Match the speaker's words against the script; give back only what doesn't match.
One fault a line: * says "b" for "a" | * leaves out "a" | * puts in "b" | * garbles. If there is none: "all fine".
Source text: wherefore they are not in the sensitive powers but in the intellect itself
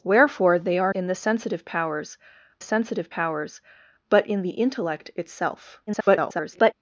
* leaves out "not"
* puts in "sensitive powers"
* garbles